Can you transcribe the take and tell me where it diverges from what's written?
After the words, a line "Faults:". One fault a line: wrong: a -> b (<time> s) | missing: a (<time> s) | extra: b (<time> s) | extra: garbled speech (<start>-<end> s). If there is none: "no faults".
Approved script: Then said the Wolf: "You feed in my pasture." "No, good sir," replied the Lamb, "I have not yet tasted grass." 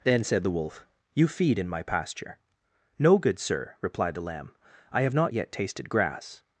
Then said the Wolf: "You feed in my pasture." "No, good sir," replied the Lamb, "I have not yet tasted grass."
Faults:
no faults